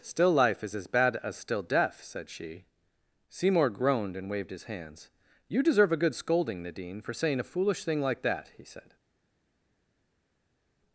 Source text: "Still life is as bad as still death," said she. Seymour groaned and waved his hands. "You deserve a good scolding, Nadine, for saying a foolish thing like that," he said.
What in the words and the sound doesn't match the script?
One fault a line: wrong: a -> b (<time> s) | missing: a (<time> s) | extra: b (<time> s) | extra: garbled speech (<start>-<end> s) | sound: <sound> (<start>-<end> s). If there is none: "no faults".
no faults